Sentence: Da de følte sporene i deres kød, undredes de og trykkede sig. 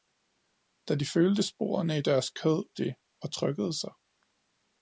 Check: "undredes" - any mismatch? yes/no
yes